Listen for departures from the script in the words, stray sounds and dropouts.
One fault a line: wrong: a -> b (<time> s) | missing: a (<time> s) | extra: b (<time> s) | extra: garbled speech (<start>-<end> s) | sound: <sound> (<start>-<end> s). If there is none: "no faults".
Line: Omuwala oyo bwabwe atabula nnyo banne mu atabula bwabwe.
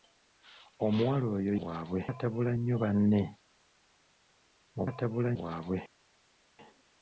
no faults